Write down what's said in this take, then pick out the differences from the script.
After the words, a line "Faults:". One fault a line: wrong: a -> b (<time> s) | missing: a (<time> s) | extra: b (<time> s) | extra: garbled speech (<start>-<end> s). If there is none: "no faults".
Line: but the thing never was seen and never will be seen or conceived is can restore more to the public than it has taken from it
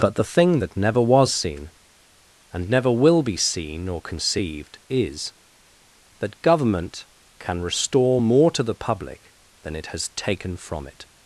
but the thing that never was seen and never will be seen or conceived is that government can restore more to the public than it has taken from it
Faults:
extra: that (0.6 s)
extra: that government (6.2 s)